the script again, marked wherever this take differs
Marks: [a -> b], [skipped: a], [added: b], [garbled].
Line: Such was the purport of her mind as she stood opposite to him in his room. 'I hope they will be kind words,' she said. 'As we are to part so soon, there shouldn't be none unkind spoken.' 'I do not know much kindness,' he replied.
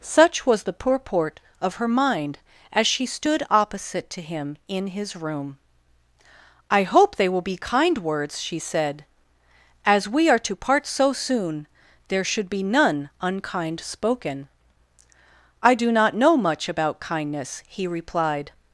Such was the purport of her mind as she stood opposite to him in his room. 'I hope they will be kind words,' she said. 'As we are to part so soon, there [shouldn't -> should] be none unkind spoken.' 'I do not know much [added: about] kindness,' he replied.